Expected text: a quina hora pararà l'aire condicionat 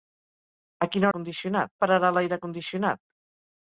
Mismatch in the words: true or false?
true